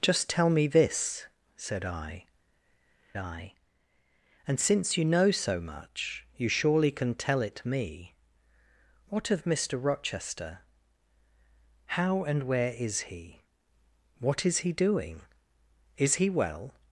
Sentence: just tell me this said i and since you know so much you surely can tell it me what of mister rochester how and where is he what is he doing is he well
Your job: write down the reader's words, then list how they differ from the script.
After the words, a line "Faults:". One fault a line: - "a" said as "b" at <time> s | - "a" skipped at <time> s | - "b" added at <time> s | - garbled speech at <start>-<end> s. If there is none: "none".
just tell me this said i i and since you know so much you surely can tell it me what of mister rochester how and where is he what is he doing is he well
Faults:
- "i" added at 3.2 s